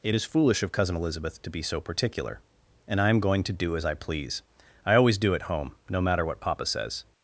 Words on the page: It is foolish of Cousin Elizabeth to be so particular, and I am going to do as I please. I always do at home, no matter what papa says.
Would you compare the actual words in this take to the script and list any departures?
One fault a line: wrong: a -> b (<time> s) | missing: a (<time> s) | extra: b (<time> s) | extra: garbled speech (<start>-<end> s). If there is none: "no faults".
no faults